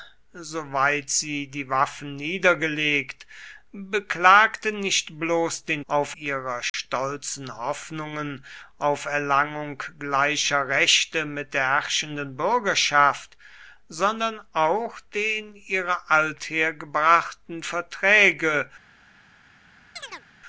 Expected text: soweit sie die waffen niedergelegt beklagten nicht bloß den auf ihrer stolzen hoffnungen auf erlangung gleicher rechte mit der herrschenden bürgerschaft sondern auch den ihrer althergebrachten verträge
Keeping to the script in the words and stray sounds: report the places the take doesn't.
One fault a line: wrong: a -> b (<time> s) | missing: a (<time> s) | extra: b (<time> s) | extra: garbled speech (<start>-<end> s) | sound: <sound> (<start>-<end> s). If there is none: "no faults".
sound: dropout (6.7-6.7 s)
sound: chirp (20.0-20.3 s)